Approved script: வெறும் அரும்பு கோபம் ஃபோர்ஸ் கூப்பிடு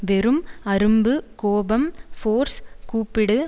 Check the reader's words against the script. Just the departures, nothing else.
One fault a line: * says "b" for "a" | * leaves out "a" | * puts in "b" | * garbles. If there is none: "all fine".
all fine